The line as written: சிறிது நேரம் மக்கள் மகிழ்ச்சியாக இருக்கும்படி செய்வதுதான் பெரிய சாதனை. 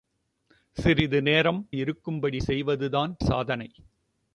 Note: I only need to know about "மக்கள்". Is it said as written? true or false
false